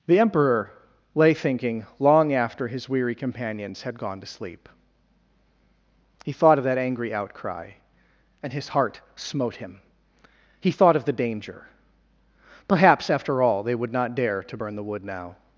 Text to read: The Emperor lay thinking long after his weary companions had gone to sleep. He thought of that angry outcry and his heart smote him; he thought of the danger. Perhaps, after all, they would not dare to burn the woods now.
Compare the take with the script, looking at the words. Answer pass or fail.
fail